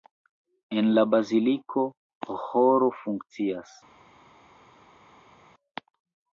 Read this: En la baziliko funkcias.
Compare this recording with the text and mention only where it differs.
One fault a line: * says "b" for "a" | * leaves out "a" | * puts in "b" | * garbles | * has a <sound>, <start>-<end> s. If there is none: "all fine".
* puts in "ĥoro"